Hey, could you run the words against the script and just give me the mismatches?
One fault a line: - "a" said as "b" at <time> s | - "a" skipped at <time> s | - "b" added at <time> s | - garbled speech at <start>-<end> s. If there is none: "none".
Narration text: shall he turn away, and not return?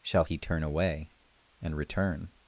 - "not" skipped at 1.8 s